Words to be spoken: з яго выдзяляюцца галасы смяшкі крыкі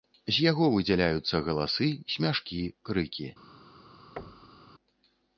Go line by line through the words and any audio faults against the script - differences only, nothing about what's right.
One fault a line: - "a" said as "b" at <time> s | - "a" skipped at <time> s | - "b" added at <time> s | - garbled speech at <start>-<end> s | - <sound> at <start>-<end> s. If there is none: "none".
- thud at 4.2-4.7 s